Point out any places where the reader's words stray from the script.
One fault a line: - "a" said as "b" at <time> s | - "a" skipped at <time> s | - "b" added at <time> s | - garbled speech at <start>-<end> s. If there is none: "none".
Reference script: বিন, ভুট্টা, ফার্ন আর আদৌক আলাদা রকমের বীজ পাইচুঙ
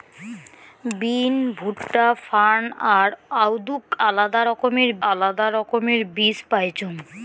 - "আলাদা রকমের" added at 5.1 s